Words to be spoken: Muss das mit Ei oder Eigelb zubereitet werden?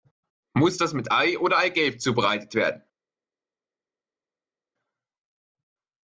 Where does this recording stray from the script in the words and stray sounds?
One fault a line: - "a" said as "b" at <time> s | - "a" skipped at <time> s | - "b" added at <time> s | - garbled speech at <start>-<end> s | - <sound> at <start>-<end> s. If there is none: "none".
none